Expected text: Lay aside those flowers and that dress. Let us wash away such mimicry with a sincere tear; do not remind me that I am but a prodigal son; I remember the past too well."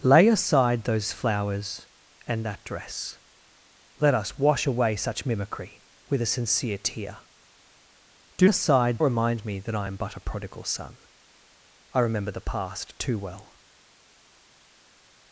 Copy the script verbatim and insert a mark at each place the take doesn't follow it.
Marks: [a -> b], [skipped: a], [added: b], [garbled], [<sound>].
Lay aside those flowers and that dress. Let us wash away such mimicry with a sincere tear; do [not -> aside] remind me that I am but a prodigal son; I remember the past too well."